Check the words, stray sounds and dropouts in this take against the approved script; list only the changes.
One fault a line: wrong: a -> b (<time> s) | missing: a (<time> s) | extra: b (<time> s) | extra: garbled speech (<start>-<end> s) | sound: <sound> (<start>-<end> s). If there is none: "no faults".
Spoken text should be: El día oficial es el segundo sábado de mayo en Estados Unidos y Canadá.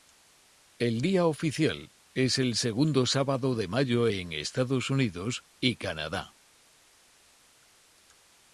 no faults